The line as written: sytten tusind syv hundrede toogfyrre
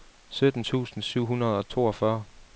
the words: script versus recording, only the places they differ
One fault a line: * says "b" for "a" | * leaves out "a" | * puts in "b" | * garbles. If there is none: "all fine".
* puts in "og"